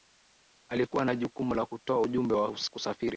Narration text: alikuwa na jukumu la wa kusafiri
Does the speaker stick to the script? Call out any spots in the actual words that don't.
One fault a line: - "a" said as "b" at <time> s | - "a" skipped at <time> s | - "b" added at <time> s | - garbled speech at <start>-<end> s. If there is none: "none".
- "kutoa ujumbe" added at 1.6 s